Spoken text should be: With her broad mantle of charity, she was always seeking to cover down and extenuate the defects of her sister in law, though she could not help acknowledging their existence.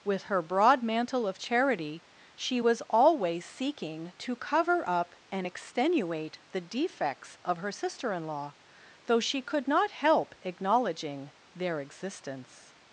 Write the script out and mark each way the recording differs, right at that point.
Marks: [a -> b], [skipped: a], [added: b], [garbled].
With her broad mantle of charity, she was always seeking to cover [down -> up] and extenuate the defects of her sister in law, though she could not help acknowledging their existence.